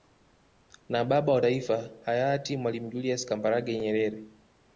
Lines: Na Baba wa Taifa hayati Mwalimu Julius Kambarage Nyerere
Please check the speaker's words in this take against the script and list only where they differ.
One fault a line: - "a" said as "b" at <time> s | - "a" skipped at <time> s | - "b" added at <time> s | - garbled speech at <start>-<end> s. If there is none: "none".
none